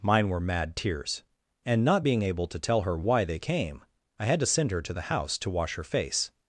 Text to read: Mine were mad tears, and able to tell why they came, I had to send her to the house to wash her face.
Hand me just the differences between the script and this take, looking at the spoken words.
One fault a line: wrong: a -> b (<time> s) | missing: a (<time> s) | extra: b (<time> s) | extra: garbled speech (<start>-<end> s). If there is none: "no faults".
extra: not being (1.9 s)
extra: her (2.8 s)